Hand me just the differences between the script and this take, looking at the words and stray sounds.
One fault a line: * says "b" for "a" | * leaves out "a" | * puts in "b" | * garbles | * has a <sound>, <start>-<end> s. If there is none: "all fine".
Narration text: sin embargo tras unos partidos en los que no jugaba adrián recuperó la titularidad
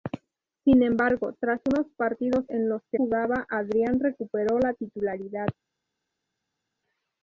* leaves out "no"